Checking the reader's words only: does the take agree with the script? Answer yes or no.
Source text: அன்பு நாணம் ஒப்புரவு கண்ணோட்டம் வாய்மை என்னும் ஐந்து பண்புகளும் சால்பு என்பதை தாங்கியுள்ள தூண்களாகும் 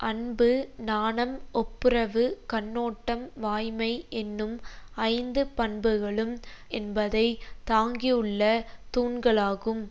no